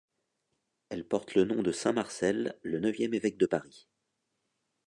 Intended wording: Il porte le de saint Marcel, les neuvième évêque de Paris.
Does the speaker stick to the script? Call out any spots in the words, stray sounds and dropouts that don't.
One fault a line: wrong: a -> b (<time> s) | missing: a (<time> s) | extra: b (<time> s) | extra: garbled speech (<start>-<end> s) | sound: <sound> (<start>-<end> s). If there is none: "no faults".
wrong: Il -> Elle (0.9 s)
extra: nom (1.4 s)
wrong: les -> le (2.6 s)